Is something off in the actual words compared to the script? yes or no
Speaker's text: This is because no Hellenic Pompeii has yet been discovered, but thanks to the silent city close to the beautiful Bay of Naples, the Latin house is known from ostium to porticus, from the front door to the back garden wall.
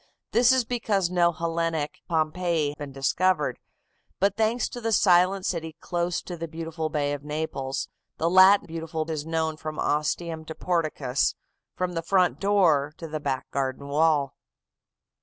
yes